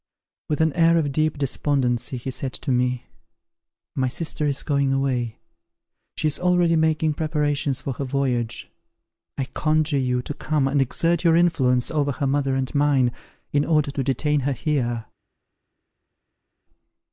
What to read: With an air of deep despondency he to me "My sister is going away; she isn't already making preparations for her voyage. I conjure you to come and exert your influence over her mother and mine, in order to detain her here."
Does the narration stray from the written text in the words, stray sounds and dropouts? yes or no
yes